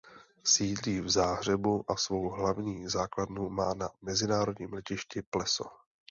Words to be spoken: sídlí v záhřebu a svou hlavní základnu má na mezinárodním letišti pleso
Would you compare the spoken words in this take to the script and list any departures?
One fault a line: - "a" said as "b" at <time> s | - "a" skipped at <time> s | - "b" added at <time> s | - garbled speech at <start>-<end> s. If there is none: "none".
none